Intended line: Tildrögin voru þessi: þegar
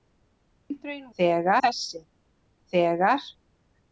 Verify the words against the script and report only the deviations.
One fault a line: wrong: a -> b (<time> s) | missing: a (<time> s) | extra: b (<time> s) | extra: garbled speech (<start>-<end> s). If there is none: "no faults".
wrong: voru -> þegar (1.2 s)